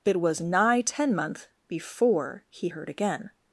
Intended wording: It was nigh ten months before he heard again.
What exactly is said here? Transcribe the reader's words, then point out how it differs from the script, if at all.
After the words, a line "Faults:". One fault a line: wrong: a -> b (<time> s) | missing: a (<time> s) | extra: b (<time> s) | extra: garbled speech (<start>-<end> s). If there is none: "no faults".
It was nigh ten month before he heard again.
Faults:
wrong: months -> month (1.1 s)